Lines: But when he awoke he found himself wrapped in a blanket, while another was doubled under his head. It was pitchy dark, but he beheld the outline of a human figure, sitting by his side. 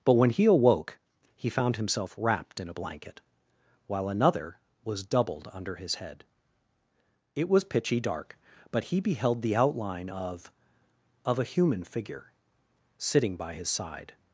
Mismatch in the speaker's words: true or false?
true